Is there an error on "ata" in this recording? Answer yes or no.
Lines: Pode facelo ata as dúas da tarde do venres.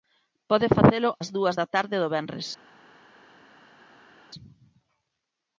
yes